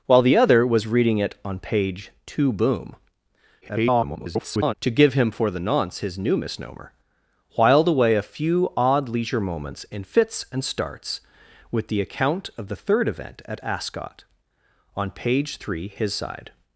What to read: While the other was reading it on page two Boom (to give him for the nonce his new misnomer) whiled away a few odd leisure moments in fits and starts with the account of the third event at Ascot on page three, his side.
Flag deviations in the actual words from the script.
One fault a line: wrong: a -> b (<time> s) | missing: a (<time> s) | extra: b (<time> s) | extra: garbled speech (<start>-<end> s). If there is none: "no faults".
extra: garbled speech (3.6-4.7 s)